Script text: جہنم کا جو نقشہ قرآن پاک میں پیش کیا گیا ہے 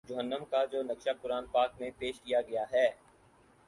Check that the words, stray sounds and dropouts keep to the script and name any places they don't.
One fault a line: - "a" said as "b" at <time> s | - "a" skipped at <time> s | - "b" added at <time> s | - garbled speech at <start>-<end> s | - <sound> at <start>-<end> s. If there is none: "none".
none